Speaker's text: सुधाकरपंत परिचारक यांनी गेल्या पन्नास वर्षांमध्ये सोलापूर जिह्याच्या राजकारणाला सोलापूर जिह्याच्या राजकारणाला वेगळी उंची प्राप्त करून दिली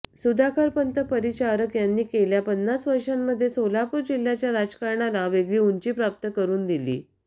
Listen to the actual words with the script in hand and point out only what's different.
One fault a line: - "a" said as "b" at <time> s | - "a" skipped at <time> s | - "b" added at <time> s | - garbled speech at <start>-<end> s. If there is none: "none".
- "सोलापूर जिह्याच्या राजकारणाला" skipped at 5.3 s